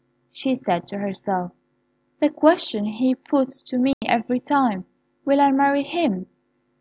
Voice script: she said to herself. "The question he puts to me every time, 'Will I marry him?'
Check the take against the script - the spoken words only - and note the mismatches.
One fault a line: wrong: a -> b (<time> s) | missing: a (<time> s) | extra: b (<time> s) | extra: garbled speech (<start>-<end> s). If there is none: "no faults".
no faults